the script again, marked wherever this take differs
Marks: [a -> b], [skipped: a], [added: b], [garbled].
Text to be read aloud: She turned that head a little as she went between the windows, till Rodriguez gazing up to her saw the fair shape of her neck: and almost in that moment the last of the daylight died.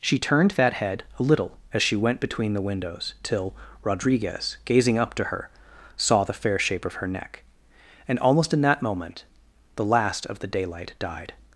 She turned that head a little as she went between the windows, till Rodriguez gazing up to her saw the fair shape of her neck: and almost in that moment the last of the daylight died.